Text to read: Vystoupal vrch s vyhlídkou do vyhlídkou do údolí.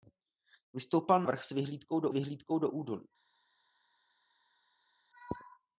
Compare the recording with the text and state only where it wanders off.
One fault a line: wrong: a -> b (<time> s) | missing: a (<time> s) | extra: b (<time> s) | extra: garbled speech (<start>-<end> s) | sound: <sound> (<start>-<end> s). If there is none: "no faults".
no faults